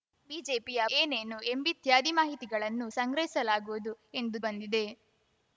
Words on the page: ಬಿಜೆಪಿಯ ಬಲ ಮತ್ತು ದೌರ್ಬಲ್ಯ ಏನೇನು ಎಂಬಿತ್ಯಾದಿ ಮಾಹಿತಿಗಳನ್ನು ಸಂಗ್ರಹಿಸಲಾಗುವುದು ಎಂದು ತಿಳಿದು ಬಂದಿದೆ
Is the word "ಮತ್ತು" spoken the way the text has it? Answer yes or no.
no